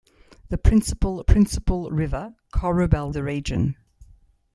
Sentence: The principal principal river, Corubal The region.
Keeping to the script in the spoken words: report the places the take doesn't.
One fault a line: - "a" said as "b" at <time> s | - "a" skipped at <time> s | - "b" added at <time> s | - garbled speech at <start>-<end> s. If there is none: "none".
none